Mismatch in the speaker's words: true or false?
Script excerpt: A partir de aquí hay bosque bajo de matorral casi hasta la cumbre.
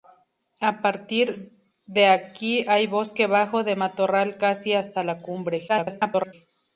true